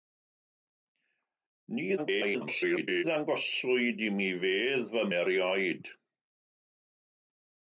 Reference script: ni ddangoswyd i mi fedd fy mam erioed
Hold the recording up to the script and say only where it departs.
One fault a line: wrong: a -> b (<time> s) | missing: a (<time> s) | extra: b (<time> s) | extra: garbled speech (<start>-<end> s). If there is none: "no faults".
extra: garbled speech (2.0-3.0 s)
missing: mam (5.0 s)